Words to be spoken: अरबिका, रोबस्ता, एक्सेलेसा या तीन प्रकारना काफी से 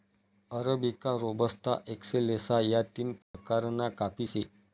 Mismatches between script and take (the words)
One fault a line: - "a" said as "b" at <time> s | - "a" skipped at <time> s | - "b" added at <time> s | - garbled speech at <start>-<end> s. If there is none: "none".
none